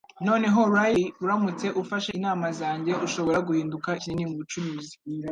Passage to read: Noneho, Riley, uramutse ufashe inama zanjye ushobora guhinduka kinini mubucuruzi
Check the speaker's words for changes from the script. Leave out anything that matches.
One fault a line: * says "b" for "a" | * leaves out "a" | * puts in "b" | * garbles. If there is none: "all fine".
all fine